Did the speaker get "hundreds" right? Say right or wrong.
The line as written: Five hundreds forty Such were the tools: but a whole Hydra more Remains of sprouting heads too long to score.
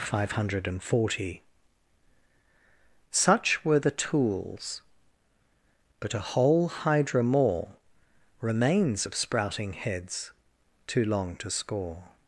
wrong